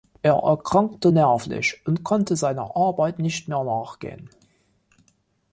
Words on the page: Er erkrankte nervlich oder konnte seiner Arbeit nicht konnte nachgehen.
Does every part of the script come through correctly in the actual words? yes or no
no